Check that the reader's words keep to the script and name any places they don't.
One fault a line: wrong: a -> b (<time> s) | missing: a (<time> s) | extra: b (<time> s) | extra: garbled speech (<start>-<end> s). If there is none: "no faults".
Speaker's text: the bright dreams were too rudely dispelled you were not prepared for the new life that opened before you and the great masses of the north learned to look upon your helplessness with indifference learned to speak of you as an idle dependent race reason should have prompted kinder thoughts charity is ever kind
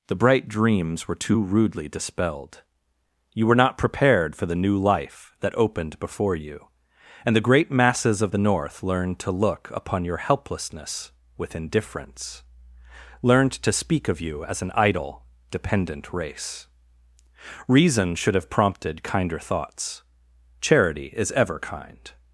no faults